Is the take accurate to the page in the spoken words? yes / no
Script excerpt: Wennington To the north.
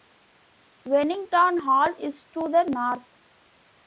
no